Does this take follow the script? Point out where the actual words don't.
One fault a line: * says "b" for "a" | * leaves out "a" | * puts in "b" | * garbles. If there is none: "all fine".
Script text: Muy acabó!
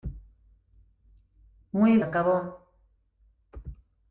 all fine